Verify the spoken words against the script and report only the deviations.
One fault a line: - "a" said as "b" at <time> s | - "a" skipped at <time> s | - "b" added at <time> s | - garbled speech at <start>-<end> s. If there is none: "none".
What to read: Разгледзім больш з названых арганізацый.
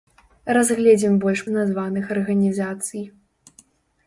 none